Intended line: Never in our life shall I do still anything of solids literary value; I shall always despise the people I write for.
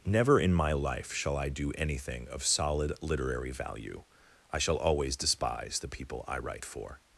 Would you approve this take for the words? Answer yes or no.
no